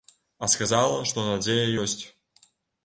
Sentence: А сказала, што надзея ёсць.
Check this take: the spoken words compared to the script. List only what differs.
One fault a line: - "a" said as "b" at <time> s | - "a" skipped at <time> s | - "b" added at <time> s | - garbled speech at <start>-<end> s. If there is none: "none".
none